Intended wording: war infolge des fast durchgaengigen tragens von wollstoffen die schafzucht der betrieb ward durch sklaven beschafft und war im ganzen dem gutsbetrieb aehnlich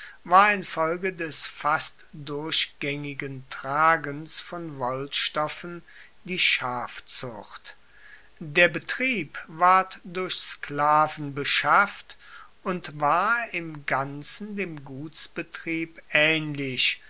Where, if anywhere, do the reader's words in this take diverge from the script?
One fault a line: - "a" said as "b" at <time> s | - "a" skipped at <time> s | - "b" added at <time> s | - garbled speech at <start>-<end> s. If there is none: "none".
none